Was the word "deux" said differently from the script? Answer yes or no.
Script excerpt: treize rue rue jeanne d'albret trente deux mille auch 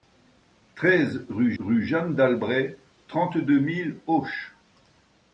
no